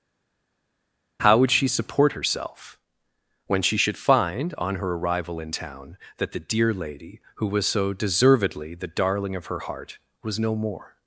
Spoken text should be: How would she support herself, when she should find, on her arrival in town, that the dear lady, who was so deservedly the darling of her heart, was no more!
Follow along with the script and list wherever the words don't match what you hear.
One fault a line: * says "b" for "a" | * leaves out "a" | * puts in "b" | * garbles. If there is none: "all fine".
all fine